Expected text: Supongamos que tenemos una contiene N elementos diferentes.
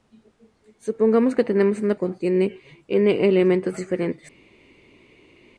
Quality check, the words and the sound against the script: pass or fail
pass